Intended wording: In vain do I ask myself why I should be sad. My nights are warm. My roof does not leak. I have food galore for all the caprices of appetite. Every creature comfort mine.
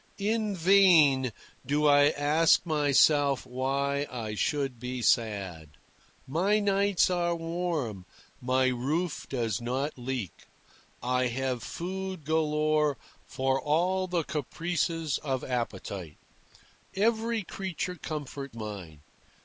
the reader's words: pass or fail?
pass